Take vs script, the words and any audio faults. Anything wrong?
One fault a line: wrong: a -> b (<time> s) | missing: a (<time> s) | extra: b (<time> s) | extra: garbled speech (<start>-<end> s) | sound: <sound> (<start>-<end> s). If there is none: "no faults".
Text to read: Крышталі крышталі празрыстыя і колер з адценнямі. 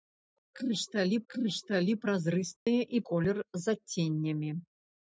sound: dropout (2.6-2.7 s)